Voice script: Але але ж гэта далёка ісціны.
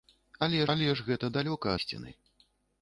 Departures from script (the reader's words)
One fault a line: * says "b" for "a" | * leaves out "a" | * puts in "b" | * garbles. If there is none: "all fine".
all fine